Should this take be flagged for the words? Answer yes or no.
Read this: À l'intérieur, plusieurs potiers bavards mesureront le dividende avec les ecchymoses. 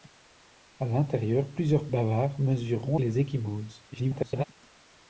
yes